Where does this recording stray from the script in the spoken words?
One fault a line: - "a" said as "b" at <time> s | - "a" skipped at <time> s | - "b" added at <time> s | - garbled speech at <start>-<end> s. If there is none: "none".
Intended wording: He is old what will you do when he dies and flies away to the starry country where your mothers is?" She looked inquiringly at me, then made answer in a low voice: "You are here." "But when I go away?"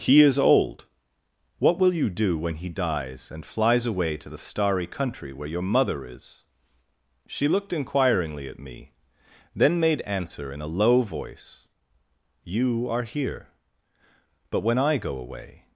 - "mothers" said as "mother" at 5.6 s